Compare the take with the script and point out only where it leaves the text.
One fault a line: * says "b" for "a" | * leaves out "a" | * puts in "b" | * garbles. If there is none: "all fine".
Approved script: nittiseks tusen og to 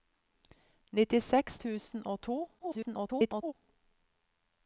* garbles